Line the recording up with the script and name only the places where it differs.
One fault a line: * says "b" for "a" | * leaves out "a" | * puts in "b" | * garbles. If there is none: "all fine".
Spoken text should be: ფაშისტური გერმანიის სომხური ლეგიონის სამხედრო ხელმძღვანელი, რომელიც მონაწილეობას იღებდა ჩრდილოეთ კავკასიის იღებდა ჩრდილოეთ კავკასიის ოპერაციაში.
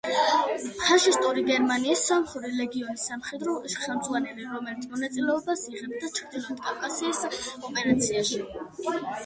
* leaves out "იღებდა ჩრდილოეთ კავკასიის"